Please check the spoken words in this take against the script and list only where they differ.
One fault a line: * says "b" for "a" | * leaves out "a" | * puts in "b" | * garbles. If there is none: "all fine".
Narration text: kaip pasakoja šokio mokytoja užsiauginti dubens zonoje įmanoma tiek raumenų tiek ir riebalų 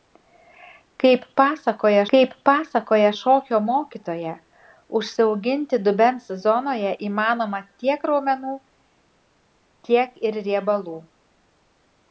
* puts in "kaip pasakoja"